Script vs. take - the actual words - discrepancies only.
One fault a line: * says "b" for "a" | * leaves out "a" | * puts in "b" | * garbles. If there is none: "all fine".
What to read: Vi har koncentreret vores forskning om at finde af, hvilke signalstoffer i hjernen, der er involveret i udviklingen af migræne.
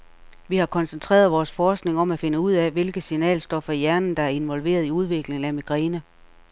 * puts in "ud"